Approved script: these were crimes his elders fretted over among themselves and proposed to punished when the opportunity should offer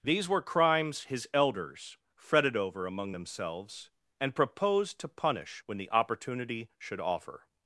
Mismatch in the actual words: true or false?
true